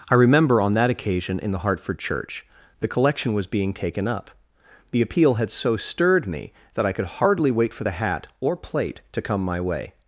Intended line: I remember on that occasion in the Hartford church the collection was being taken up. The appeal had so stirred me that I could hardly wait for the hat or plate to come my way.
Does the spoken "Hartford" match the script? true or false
true